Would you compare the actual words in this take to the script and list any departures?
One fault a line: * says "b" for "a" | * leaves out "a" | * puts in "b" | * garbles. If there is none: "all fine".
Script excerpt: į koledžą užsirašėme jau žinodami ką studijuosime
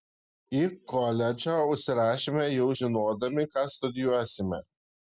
all fine